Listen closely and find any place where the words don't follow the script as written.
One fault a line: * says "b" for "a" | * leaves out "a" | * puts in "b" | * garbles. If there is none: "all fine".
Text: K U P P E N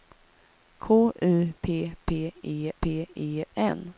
* puts in "P E"